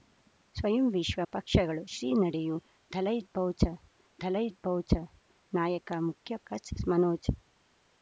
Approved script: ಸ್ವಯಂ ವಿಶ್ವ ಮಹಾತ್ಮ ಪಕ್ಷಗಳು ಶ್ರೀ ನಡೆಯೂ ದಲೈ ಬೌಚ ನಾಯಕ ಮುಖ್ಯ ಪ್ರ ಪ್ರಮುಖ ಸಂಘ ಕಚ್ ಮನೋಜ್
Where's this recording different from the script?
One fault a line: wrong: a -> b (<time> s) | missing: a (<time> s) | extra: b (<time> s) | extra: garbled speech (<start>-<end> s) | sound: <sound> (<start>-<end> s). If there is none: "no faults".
missing: ಮಹಾತ್ಮ (1.2 s)
extra: ದಲೈ ಬೌಚ (4.2 s)
missing: ಪ್ರ ಪ್ರಮುಖ ಸಂಘ (6.4 s)